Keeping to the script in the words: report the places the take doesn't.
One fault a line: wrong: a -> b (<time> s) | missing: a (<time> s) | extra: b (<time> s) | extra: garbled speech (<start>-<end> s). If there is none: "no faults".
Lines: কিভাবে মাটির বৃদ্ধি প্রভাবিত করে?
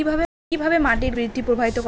no faults